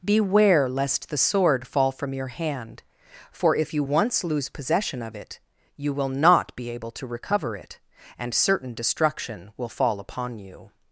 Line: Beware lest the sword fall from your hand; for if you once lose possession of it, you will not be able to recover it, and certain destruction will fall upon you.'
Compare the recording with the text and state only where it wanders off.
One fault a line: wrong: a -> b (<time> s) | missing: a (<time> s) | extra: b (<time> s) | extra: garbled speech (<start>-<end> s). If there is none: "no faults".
no faults